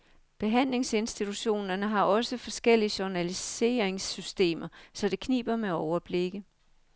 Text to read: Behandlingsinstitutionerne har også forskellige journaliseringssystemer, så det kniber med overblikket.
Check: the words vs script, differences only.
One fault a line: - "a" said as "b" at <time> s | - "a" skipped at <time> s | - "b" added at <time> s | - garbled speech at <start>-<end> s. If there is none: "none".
none